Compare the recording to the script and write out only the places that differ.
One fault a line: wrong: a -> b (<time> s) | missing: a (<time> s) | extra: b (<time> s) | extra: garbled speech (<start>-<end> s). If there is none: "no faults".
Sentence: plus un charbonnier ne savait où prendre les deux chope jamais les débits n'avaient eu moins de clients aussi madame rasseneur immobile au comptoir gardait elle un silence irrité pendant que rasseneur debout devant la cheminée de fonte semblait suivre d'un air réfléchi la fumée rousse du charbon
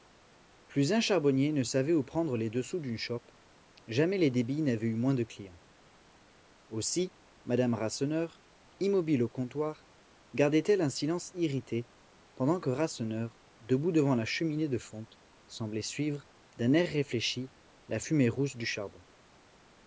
extra: sous d'une (2.6 s)